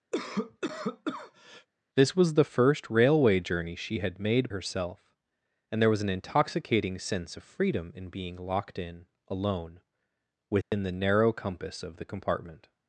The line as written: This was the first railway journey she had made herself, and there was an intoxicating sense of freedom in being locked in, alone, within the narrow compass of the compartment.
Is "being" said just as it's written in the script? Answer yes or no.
yes